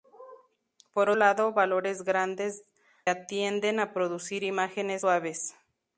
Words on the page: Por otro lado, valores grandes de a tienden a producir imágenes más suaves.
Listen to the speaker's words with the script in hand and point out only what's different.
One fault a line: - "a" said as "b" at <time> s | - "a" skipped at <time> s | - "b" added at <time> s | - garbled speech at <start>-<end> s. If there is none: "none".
- "otro" skipped at 1.1 s
- "de" skipped at 2.7 s
- "más" skipped at 5.1 s